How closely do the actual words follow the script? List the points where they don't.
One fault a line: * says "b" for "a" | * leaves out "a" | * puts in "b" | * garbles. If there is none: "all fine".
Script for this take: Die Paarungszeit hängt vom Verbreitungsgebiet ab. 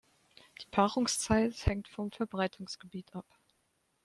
all fine